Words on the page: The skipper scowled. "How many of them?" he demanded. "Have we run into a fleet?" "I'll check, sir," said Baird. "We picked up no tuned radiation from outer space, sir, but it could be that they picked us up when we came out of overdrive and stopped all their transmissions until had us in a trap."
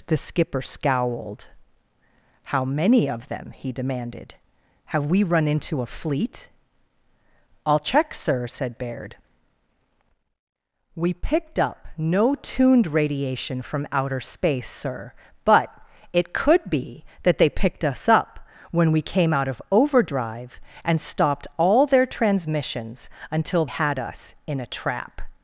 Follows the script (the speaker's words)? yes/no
yes